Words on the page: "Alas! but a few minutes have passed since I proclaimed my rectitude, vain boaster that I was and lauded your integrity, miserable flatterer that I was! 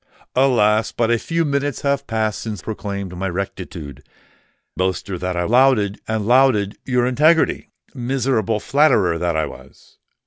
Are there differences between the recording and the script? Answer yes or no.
yes